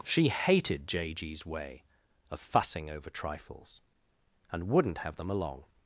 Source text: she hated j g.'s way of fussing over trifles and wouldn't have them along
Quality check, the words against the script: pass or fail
pass